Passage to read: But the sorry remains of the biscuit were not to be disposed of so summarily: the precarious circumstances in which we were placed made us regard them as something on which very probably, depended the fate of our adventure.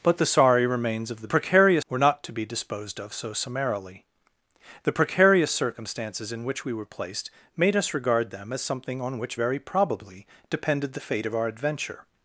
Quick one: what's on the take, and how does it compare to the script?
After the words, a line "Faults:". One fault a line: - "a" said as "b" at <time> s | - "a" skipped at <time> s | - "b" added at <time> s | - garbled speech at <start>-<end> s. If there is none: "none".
But the sorry remains of the precarious were not to be disposed of so summarily: the precarious circumstances in which we were placed made us regard them as something on which very probably, depended the fate of our adventure.
Faults:
- "biscuit" said as "precarious" at 1.3 s